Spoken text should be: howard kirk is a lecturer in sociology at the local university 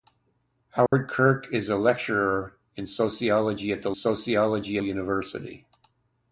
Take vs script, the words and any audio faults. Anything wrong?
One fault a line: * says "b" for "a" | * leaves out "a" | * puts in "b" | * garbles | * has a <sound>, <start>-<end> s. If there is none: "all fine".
* has a dropout, 0.9-0.9 s
* says "sociology" for "local"